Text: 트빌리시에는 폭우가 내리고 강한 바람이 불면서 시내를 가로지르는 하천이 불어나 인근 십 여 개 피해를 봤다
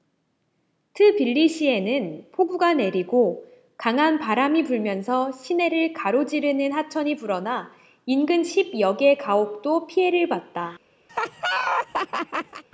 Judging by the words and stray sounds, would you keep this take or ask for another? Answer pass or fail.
fail